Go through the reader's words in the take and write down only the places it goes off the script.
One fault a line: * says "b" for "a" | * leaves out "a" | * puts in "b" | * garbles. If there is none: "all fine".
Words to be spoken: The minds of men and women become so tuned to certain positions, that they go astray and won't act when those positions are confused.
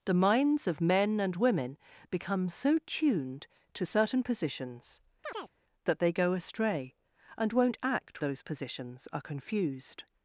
* leaves out "when"